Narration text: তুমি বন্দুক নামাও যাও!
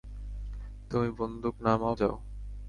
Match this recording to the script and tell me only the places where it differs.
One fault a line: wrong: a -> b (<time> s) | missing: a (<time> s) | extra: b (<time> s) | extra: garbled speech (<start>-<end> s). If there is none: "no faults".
no faults